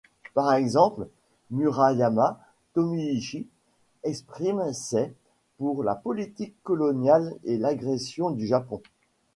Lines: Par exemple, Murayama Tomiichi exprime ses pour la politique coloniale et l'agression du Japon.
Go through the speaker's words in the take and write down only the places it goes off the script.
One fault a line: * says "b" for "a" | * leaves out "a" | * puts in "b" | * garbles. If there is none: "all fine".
all fine